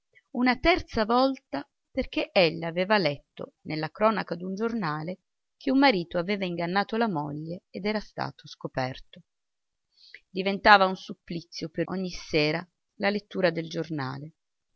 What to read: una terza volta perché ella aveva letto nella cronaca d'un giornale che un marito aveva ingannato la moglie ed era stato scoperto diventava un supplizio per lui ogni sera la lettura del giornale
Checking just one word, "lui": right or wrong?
wrong